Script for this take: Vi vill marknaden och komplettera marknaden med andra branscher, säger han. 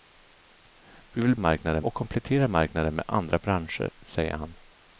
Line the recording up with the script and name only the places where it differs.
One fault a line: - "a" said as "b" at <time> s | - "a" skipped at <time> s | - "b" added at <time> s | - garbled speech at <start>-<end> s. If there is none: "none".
none